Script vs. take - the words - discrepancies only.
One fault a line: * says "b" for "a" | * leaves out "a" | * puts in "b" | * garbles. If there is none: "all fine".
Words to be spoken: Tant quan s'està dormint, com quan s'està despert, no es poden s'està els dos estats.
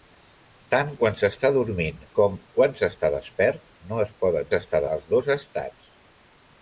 all fine